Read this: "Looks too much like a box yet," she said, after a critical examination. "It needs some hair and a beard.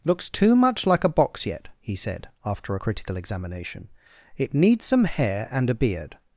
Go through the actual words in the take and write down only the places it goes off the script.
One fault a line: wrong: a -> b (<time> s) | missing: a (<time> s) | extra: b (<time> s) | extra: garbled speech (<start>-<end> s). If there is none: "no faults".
wrong: she -> he (1.8 s)